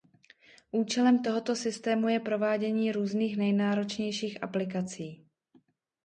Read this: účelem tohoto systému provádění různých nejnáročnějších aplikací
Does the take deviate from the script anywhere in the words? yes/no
yes